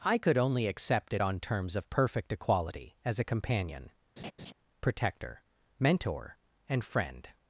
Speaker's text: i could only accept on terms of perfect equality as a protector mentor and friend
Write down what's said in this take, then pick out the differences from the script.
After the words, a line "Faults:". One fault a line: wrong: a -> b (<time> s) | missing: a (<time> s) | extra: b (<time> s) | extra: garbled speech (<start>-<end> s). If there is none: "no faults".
i could only accept it on terms of perfect equality as a companion protector mentor and friend
Faults:
extra: it (1.1 s)
extra: companion (3.2 s)